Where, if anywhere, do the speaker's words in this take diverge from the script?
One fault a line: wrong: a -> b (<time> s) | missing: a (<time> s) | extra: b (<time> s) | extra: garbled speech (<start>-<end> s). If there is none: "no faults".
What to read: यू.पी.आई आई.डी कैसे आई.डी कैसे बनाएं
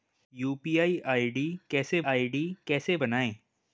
no faults